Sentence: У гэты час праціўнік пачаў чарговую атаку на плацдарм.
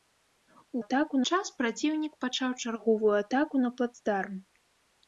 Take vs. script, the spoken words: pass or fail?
fail